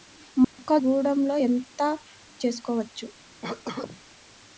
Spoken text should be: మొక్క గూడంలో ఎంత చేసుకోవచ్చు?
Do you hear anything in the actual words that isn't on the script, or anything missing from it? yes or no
no